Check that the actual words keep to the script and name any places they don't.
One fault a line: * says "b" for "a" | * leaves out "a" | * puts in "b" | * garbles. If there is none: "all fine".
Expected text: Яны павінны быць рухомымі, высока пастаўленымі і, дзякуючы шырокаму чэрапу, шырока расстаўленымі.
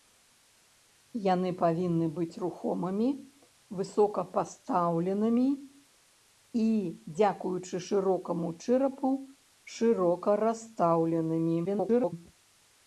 * garbles